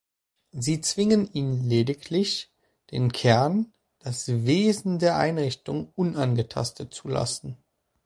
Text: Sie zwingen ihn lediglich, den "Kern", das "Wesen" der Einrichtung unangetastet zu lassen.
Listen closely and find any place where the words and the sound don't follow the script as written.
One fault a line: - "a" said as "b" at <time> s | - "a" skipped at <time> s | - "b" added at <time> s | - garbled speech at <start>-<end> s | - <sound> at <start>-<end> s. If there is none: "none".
none